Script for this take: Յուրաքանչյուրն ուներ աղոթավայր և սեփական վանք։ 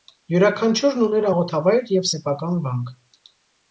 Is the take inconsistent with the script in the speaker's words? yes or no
no